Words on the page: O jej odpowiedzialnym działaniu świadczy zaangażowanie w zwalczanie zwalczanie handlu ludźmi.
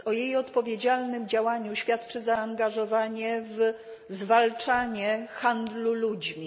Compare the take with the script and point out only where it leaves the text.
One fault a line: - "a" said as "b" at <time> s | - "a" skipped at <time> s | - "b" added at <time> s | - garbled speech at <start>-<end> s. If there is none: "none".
- "zwalczanie" skipped at 5.3 s